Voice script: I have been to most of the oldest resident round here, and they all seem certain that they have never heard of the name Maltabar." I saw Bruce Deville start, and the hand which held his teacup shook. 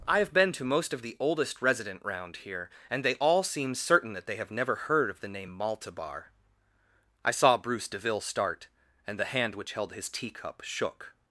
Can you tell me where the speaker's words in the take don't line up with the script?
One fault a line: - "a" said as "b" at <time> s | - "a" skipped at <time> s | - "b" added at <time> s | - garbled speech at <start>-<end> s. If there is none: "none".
none